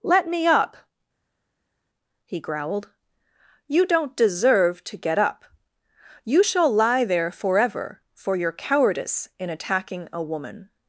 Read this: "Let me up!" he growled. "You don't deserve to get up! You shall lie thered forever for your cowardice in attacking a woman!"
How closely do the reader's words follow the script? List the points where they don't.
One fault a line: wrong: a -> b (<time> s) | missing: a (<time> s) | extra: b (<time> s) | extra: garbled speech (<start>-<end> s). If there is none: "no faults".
wrong: thered -> there (7.1 s)